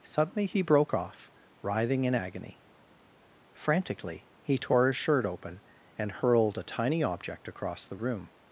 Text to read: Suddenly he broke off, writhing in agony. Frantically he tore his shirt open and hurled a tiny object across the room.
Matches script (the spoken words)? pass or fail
pass